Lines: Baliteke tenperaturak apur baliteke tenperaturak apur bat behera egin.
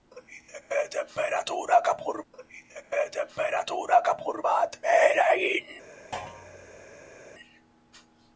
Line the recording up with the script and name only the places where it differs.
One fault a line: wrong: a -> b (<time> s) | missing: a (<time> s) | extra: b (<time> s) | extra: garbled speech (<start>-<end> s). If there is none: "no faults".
no faults